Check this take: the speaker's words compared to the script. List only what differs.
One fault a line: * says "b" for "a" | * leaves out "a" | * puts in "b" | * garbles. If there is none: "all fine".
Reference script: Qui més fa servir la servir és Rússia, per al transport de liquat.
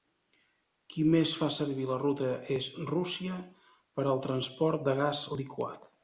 * says "ruta" for "servir"
* puts in "gas"